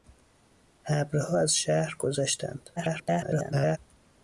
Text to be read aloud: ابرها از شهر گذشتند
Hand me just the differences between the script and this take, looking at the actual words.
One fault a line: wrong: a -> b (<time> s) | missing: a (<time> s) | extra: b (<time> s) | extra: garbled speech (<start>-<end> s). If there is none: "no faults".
extra: garbled speech (2.8-3.8 s)